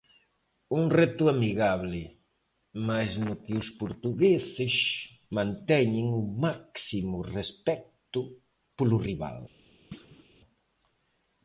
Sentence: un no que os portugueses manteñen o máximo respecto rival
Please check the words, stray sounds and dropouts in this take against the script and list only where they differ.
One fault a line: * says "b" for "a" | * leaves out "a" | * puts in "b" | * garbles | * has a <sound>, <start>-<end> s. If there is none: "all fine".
* puts in "reto amigable mais"
* puts in "polo"
* has a thud, 9.9-10.3 s